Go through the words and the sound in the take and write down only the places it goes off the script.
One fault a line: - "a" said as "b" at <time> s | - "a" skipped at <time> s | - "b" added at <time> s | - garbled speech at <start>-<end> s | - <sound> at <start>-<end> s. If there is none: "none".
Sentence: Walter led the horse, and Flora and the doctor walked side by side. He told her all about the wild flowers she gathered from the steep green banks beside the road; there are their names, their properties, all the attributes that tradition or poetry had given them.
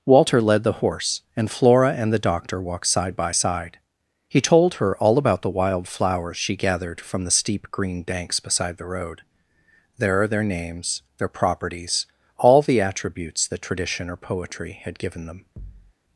- thud at 15.6-15.9 s